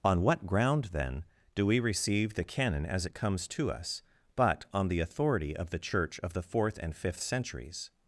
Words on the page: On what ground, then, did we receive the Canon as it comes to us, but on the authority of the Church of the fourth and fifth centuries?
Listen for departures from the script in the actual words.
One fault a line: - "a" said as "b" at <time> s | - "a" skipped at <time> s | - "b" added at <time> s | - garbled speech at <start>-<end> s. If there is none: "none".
- "did" said as "do" at 1.5 s